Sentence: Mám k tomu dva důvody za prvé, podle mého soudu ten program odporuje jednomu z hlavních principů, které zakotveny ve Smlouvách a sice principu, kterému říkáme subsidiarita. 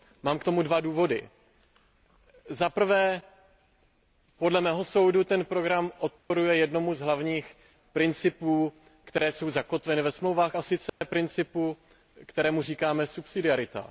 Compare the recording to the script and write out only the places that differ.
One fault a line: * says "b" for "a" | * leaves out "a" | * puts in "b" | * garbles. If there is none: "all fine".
* puts in "jsou"